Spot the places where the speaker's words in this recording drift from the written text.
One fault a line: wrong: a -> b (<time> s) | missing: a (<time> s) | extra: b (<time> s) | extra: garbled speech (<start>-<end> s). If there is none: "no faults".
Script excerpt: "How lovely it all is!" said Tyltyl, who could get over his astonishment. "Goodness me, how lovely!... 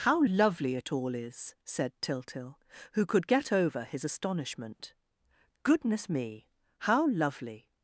no faults